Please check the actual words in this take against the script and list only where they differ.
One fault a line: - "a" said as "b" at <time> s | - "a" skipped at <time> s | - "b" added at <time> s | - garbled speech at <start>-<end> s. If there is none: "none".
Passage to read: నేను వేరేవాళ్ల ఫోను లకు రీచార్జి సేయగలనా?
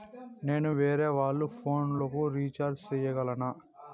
none